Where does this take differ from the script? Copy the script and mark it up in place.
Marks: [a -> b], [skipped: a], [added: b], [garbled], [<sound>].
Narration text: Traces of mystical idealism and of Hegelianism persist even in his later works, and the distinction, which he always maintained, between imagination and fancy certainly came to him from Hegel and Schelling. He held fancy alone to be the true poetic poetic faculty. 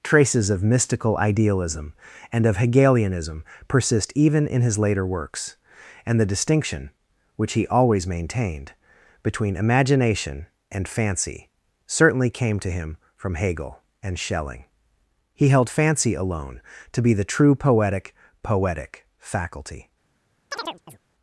Traces of mystical idealism and of Hegelianism persist even in his later works, and the distinction, which he always maintained, between imagination and fancy certainly came to him from Hegel and Schelling. He held fancy alone to be the true poetic poetic faculty. [chirp]